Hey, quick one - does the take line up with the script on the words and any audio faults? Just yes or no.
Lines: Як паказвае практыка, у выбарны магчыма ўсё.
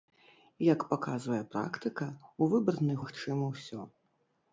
yes